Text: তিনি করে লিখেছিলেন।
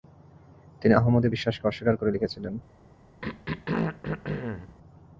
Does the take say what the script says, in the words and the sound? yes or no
no